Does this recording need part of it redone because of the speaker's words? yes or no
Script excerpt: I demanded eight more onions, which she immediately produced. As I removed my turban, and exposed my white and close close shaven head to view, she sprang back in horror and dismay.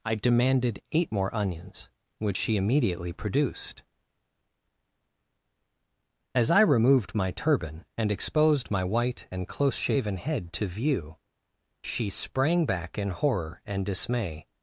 yes